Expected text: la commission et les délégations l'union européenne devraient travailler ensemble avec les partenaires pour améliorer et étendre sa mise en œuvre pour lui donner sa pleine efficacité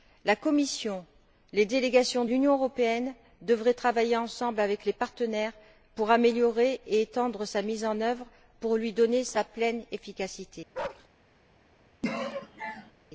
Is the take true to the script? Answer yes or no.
yes